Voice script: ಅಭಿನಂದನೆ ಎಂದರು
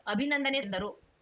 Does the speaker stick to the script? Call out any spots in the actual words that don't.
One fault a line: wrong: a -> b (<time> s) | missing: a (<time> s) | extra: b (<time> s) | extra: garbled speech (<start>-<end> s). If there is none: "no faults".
no faults